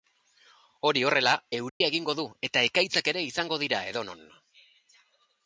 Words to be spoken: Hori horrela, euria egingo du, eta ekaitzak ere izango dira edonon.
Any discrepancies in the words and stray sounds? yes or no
yes